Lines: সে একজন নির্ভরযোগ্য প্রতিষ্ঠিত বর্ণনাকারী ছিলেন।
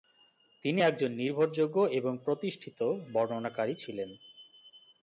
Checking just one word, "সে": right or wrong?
wrong